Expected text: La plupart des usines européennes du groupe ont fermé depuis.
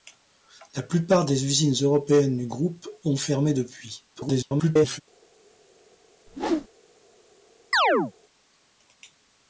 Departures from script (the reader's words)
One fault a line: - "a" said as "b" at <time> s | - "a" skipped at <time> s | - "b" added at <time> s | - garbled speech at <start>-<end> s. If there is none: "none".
- garbled speech at 4.1-5.0 s